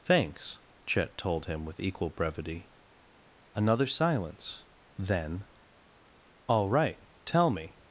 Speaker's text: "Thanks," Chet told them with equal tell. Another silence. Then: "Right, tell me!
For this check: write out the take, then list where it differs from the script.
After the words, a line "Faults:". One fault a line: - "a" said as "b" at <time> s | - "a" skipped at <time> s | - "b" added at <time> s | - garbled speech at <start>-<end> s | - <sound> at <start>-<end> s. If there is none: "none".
"Thanks," Chet told him with equal brevity. Another silence. Then: "All right, tell me!
Faults:
- "them" said as "him" at 1.4 s
- "tell" said as "brevity" at 2.1 s
- "All" added at 6.5 s